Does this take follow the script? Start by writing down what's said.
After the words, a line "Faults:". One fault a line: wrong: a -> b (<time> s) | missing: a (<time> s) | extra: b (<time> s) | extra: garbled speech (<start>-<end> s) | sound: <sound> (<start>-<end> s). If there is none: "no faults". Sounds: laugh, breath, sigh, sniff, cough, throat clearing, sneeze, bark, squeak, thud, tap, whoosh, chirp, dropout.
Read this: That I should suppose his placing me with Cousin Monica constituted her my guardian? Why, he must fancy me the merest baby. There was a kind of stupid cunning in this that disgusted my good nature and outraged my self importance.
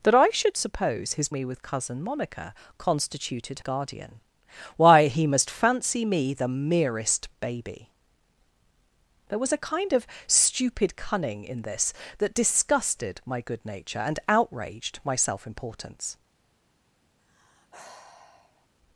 That I should suppose his me with Cousin Monica constituted guardian? Why, he must fancy me the merest baby. There was a kind of stupid cunning in this that disgusted my good nature and outraged my self importance.
Faults:
missing: placing (1.3 s)
missing: her my (3.6 s)
sound: sigh (17.2-18.7 s)